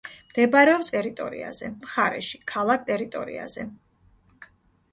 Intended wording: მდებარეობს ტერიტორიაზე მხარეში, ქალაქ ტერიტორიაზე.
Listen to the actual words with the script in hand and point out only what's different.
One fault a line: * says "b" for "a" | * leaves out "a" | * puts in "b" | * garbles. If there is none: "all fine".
all fine